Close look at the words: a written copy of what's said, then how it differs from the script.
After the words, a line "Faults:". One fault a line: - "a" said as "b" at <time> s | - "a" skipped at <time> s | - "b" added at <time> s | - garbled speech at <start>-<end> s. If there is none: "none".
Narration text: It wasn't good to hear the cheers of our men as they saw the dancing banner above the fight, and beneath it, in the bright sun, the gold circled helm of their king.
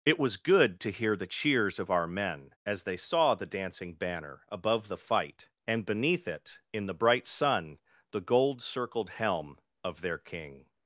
It was good to hear the cheers of our men as they saw the dancing banner above the fight, and beneath it, in the bright sun, the gold circled helm of their king.
Faults:
- "wasn't" said as "was" at 0.2 s